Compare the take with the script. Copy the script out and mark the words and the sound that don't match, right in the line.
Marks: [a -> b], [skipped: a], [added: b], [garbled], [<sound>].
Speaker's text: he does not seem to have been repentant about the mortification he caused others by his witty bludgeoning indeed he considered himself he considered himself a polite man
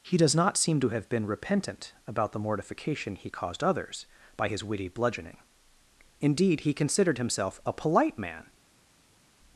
he does not seem to have been repentant about the mortification he caused others by his witty bludgeoning indeed he considered himself [skipped: he considered himself] a polite man